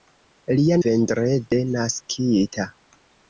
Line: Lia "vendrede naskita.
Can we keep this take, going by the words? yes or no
yes